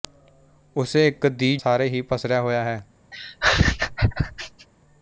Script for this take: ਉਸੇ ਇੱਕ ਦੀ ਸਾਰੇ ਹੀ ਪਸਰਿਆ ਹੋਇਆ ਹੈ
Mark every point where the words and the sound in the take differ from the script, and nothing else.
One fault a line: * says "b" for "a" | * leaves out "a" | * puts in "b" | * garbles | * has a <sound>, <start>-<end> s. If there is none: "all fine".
* has a laugh, 3.1-4.7 s